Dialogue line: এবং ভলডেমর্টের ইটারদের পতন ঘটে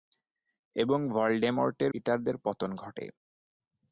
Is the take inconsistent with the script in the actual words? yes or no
no